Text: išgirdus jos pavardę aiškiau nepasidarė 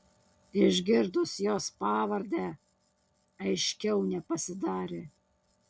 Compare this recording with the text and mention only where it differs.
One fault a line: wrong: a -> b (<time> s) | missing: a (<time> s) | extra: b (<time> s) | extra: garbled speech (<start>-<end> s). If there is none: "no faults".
no faults